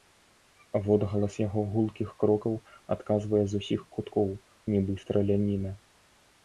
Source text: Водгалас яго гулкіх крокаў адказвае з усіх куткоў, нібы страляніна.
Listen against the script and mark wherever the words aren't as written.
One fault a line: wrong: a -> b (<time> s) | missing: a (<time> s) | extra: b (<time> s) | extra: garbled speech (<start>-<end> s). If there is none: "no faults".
no faults